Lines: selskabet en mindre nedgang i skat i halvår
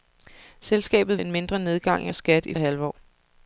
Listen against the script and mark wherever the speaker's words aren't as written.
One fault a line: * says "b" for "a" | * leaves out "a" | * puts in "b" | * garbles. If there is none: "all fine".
all fine